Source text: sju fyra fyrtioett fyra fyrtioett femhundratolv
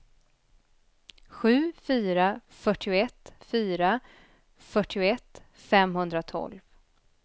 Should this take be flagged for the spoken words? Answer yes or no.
no